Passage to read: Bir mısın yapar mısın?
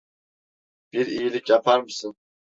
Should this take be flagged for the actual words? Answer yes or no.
yes